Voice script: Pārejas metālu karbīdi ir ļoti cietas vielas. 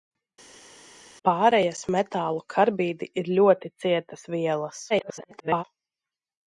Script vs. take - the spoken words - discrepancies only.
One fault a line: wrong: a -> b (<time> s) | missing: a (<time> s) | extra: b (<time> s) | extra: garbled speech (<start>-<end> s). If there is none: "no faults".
extra: garbled speech (4.9-5.6 s)